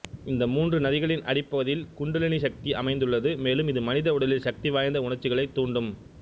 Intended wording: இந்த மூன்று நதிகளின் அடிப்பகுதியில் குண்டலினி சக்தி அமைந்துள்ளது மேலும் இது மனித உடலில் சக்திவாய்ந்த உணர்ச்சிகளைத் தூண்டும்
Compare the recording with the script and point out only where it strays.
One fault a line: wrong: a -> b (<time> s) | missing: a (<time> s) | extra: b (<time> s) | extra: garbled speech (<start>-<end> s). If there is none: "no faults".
no faults